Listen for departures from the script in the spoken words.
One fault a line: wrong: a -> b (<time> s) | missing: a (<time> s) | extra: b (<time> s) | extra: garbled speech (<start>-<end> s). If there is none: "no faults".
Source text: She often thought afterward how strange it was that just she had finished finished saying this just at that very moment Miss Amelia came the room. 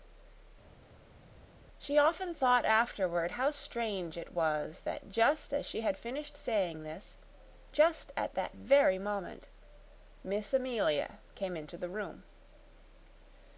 extra: as (5.5 s)
missing: finished (6.4 s)
extra: into (11.6 s)